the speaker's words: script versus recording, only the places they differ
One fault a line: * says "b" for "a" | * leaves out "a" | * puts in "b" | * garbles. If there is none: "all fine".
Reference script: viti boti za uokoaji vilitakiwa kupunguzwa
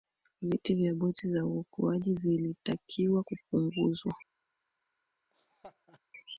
* puts in "vya"